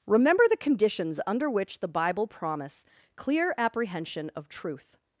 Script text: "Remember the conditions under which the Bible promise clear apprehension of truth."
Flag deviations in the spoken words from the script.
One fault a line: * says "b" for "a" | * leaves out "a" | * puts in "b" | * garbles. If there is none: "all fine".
all fine